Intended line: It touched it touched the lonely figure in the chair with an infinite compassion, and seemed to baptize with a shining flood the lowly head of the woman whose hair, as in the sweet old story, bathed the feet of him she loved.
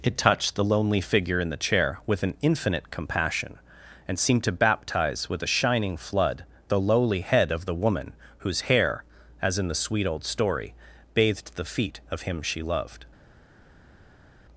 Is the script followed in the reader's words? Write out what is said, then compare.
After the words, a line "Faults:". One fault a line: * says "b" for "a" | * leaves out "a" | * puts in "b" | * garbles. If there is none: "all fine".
It touched the lonely figure in the chair with an infinite compassion, and seemed to baptize with a shining flood the lowly head of the woman whose hair, as in the sweet old story, bathed the feet of him she loved.
Faults:
* leaves out "it touched"